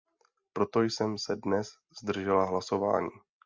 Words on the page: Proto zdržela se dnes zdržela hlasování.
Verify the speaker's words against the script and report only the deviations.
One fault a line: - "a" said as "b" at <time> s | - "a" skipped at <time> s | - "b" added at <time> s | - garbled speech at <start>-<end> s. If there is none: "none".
- "zdržela" said as "jsem" at 0.8 s